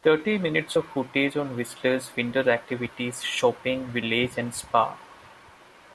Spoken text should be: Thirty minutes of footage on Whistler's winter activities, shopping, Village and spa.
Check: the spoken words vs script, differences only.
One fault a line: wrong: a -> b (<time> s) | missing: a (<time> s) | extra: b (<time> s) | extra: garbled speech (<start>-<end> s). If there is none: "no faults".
no faults